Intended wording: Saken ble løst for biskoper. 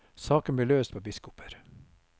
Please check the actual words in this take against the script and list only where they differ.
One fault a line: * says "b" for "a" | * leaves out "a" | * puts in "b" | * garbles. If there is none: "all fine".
all fine